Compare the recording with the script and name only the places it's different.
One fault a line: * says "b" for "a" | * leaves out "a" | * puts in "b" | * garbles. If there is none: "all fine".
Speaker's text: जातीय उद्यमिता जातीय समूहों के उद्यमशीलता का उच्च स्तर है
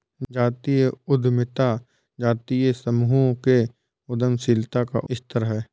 * leaves out "उच्च"